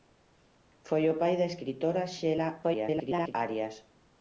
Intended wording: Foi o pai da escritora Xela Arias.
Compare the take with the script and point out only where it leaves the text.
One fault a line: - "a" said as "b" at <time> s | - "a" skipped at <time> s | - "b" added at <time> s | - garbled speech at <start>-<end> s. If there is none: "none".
- garbled speech at 2.6-3.3 s